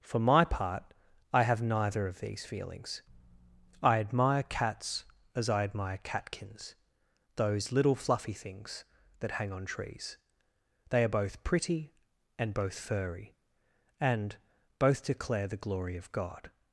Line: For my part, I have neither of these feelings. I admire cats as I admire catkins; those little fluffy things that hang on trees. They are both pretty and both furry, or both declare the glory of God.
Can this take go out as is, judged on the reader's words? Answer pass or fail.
fail